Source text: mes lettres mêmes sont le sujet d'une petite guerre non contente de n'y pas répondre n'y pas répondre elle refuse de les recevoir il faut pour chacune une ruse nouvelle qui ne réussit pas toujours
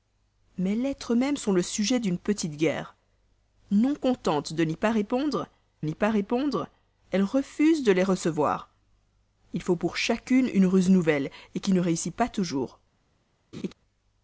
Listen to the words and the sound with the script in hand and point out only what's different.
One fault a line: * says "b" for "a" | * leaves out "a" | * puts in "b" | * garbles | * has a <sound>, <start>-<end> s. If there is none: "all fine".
* has a laugh, 13.5-13.7 s